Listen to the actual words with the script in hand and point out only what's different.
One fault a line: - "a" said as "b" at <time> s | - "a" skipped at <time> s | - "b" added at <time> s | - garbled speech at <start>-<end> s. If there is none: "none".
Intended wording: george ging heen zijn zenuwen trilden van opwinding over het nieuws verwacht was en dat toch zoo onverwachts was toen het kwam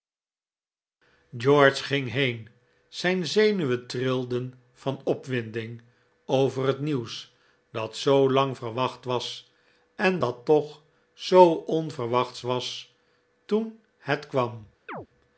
- "dat zoo lang" added at 7.7 s